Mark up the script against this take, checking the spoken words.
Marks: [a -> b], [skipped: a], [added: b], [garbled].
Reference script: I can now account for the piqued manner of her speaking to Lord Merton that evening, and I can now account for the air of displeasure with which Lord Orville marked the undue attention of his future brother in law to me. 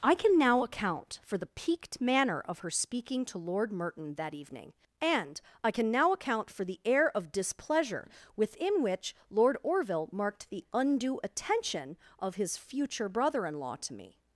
I can now account for the piqued manner of her speaking to Lord Merton that evening, and I can now account for the air of displeasure [with -> within] which Lord Orville marked the undue attention of his future brother in law to me.